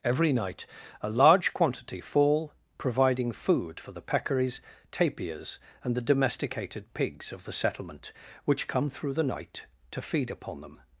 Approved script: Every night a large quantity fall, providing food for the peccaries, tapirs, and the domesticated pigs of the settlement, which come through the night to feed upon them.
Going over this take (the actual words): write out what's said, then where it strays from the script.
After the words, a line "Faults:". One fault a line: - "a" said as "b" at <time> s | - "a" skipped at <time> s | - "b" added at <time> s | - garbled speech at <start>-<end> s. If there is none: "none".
Every night a large quantity fall, providing food for the peccaries, tapirs, and the domesticated pigs of the settlement, which come through the night to feed upon them.
Faults:
none